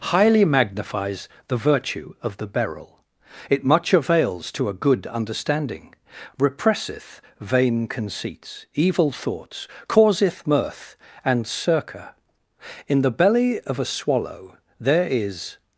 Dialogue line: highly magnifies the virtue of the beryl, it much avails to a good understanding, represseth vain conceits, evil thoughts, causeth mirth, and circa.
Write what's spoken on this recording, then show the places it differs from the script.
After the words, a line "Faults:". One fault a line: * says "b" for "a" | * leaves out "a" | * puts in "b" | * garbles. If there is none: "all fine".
highly magnifies the virtue of the beryl, it much avails to a good understanding, represseth vain conceits, evil thoughts, causeth mirth, and circa. In the belly of a swallow there is
Faults:
* puts in "In the belly of a swallow there is"